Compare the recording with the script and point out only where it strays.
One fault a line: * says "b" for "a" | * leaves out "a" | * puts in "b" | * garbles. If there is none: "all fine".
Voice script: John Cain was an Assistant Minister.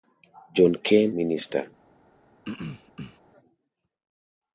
* leaves out "was an Assistant"